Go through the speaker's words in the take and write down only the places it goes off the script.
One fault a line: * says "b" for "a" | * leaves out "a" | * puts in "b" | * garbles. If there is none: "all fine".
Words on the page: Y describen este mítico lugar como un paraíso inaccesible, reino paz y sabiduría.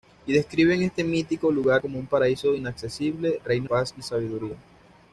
all fine